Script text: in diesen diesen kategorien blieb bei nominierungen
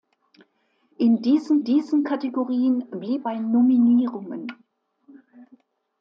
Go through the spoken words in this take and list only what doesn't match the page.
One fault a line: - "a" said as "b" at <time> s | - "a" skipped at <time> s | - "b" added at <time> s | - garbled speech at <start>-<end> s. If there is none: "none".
none